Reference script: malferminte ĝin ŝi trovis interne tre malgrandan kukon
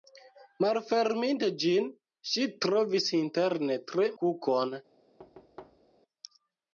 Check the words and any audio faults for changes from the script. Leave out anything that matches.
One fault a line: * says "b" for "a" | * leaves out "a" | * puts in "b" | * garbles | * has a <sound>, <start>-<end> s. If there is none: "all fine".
* leaves out "malgrandan"
* has a thud, 5.2-6.0 s